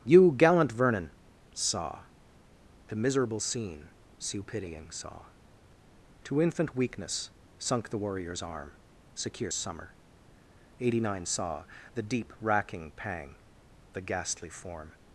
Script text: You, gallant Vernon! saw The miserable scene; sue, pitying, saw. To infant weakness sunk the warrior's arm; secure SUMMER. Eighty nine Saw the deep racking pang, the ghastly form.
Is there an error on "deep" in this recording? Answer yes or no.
no